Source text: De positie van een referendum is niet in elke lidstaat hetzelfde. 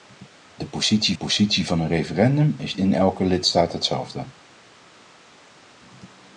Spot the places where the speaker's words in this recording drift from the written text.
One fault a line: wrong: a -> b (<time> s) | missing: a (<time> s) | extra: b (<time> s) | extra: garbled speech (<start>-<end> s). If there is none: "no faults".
extra: positie (1.1 s)
missing: niet (2.8 s)